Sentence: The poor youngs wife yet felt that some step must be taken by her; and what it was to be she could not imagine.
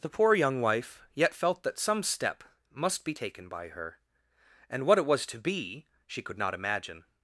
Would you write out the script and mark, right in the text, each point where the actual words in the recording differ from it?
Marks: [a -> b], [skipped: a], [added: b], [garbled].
The poor [youngs -> young] wife yet felt that some step must be taken by her; and what it was to be she could not imagine.